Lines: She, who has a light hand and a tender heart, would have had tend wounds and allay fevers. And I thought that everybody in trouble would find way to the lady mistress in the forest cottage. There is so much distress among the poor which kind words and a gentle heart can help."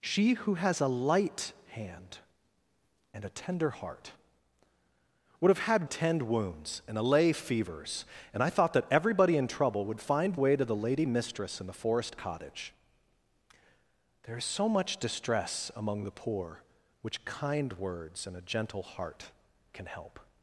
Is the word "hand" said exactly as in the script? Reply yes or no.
yes